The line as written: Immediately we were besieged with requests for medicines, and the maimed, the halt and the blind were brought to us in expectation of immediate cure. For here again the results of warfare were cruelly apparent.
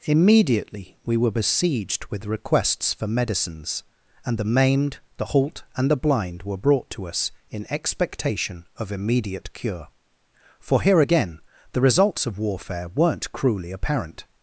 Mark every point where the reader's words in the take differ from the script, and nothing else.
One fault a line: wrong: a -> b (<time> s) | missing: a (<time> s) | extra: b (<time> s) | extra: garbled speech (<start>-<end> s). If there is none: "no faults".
wrong: were -> weren't (12.9 s)